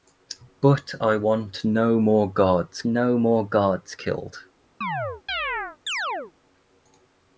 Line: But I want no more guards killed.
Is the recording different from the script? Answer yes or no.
yes